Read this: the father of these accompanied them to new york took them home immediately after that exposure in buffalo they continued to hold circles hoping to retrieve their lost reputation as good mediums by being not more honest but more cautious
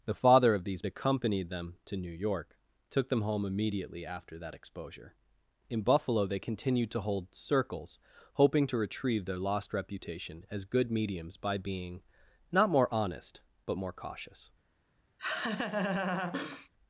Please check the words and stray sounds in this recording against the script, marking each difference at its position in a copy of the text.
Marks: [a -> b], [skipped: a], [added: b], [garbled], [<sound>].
the father of these accompanied them to new york took them home immediately after that exposure in buffalo they continued to hold circles hoping to retrieve their lost reputation as good mediums by being not more honest but more cautious [laugh]